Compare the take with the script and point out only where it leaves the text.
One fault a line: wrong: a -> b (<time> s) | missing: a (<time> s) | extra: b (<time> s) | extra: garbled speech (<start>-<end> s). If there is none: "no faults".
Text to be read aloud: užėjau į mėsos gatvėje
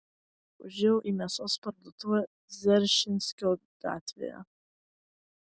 extra: parduotuvę dzeržinskio (1.7 s)